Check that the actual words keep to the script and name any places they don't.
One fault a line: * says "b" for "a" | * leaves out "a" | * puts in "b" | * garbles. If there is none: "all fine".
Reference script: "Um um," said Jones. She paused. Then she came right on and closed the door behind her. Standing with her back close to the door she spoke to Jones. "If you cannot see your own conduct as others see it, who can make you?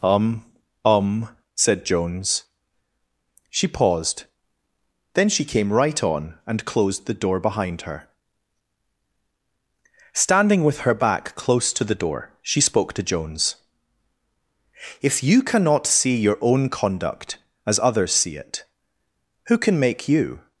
all fine